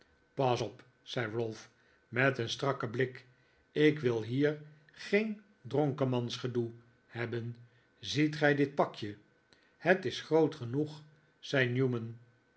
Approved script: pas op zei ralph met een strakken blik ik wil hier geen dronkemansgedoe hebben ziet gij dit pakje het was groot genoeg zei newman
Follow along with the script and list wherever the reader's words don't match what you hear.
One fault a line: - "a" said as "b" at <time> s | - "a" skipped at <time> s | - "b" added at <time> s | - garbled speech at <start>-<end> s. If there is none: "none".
- "was" said as "is" at 10.0 s